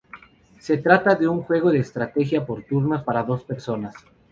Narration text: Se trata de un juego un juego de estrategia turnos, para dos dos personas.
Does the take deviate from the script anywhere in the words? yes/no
yes